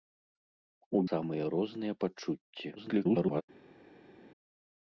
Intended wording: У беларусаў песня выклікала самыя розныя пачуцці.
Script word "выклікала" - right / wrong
wrong